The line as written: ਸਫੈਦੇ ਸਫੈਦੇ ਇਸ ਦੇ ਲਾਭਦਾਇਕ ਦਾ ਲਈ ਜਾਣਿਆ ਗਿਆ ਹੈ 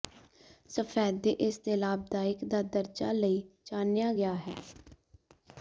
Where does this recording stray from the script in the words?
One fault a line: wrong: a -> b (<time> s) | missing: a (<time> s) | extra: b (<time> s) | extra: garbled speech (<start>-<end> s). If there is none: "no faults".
missing: ਸਫੈਦੇ (1.3 s)
extra: ਦਰਜਾ (2.6 s)